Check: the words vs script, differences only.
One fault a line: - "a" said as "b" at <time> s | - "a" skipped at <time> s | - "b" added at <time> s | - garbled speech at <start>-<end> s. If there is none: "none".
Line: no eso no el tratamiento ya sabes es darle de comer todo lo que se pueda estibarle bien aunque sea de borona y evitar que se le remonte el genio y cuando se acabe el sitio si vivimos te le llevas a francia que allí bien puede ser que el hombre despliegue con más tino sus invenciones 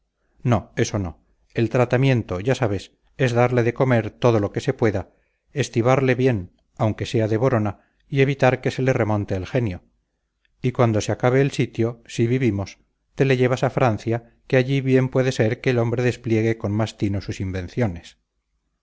none